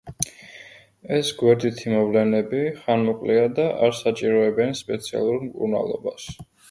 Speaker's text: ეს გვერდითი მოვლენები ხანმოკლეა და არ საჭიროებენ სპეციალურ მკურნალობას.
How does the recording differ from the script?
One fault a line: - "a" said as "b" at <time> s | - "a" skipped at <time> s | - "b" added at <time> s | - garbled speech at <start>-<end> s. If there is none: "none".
none